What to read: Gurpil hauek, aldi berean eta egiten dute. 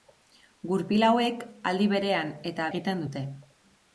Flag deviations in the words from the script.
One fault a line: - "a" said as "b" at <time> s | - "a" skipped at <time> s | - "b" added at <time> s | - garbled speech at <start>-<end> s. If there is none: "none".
none